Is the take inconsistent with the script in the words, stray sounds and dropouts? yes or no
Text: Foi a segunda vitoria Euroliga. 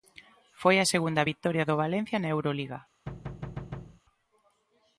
yes